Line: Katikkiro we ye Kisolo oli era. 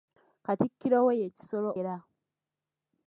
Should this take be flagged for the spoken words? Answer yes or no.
yes